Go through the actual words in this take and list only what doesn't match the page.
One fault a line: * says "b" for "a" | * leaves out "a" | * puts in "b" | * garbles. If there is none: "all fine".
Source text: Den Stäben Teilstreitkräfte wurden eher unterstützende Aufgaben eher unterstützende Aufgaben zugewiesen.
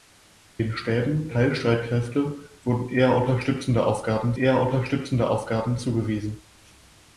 all fine